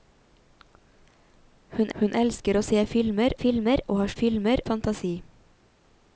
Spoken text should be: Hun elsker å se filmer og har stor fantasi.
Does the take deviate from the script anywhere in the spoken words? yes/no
yes